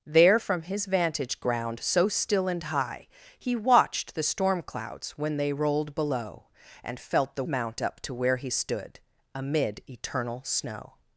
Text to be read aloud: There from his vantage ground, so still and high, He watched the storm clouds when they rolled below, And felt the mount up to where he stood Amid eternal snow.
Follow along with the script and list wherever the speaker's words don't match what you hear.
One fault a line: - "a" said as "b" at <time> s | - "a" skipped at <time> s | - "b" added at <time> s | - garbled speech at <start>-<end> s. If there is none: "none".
none